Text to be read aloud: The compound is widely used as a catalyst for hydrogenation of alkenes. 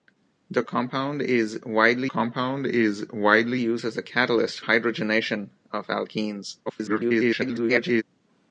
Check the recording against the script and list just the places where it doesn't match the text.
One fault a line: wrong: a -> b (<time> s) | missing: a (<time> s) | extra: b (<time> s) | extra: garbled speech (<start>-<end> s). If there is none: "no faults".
extra: compound is widely (2.0 s)
missing: for (4.6 s)
extra: garbled speech (6.7-8.0 s)